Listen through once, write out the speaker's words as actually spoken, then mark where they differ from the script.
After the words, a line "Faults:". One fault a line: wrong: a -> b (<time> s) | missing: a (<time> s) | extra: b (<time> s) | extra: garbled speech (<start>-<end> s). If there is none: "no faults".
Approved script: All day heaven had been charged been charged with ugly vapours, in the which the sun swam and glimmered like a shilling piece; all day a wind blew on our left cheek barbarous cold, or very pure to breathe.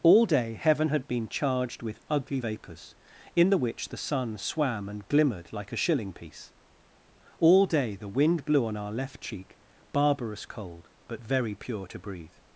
All day heaven had been charged with ugly vapours, in the which the sun swam and glimmered like a shilling piece; all day the wind blew on our left cheek barbarous cold, but very pure to breathe.
Faults:
missing: been charged (1.8 s)
wrong: a -> the (7.9 s)
wrong: or -> but (11.1 s)